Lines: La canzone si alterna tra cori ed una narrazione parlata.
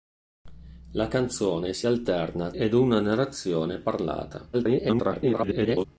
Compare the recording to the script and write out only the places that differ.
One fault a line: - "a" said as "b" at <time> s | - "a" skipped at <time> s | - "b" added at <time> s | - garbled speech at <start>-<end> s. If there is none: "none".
- "tra cori" skipped at 2.5 s
- garbled speech at 4.5-5.8 s